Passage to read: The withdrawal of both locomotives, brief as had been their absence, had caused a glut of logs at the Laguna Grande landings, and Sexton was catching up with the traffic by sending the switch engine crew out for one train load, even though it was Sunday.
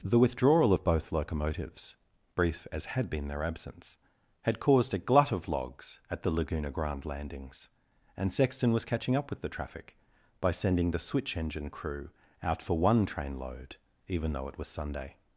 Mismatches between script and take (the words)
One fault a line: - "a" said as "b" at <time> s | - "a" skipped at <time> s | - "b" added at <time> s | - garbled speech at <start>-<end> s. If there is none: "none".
none